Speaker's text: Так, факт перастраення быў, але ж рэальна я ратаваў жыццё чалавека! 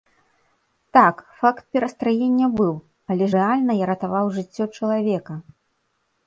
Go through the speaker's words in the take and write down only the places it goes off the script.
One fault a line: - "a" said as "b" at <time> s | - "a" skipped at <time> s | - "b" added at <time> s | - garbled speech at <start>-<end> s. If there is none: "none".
- "ж" skipped at 3.2 s